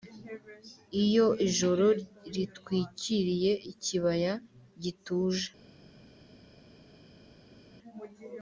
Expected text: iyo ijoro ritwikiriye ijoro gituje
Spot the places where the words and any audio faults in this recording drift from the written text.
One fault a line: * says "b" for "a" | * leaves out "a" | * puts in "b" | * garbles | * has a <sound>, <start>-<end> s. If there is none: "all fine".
* says "ikibaya" for "ijoro"